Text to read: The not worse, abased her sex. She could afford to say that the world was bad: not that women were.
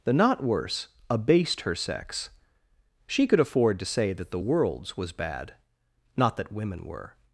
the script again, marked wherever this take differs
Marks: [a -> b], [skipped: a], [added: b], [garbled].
The not worse, abased her sex. She could afford to say that the [world -> worlds] was bad: not that women were.